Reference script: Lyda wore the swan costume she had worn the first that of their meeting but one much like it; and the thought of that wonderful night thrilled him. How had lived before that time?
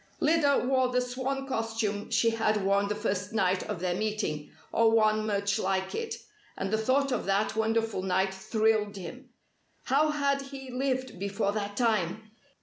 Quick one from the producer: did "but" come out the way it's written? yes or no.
no